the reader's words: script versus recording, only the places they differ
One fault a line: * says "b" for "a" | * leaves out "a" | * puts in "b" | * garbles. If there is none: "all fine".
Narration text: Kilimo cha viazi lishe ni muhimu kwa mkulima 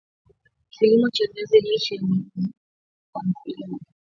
all fine